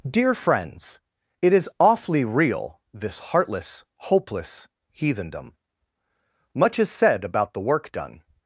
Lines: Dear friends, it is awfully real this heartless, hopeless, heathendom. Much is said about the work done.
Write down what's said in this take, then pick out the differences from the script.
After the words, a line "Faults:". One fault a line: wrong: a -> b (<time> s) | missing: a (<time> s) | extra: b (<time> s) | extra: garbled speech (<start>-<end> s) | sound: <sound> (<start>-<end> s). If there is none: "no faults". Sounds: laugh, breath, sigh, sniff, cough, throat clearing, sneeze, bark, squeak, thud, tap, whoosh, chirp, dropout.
Dear friends, it is awfully real this heartless, hopeless, heathendom. Much is said about the work done.
Faults:
no faults